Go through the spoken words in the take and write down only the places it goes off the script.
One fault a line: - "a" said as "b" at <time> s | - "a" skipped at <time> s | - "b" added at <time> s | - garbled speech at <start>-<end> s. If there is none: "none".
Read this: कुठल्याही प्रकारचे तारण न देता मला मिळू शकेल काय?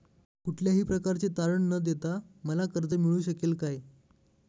- "कर्ज" added at 2.7 s